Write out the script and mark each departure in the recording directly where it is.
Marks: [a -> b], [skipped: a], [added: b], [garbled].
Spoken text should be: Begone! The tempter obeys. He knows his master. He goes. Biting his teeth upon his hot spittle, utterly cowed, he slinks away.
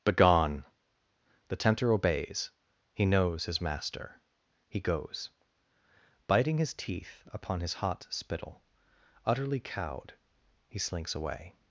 Begone! The tempter obeys. He knows his master. He goes. Biting his teeth upon his hot spittle, utterly cowed, he slinks away.